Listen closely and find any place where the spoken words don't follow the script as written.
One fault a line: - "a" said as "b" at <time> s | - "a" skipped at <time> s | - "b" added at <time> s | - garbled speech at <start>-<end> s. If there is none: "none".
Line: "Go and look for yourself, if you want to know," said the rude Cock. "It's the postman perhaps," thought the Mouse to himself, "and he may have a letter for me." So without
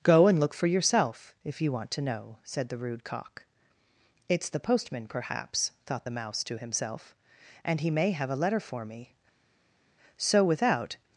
none